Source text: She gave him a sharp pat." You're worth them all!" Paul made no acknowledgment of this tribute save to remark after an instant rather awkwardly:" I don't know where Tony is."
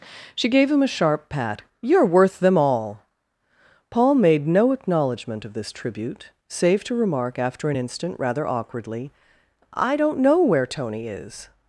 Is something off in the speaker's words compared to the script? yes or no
no